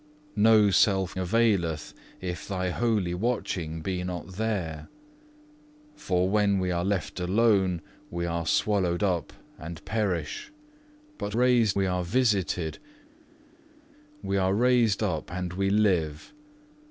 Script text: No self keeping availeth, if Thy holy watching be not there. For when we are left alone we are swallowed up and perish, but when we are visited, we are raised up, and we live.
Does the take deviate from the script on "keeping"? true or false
true